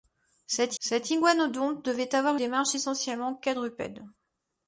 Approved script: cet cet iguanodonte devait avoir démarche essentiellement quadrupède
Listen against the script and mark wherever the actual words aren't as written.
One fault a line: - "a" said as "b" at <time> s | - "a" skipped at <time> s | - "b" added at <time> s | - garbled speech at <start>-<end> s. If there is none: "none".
none